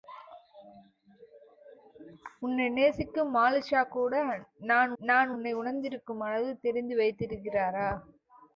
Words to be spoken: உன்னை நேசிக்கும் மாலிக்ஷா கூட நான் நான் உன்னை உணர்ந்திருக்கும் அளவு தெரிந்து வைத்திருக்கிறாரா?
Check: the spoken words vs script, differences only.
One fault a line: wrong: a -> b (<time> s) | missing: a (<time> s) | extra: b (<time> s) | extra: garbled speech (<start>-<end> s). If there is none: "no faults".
no faults